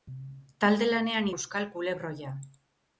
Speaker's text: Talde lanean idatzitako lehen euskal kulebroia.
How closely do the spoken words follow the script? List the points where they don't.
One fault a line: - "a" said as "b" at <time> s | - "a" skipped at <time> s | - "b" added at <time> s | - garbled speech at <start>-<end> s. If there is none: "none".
- "idatzitako lehen" skipped at 1.3 s